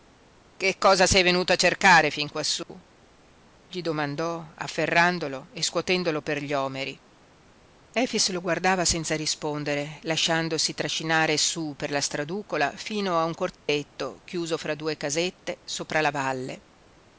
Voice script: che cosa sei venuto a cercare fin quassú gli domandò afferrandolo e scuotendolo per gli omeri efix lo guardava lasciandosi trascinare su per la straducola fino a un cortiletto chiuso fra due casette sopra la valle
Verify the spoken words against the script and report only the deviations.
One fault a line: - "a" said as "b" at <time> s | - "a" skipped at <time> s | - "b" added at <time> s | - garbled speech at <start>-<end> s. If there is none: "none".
- "senza rispondere" added at 8.8 s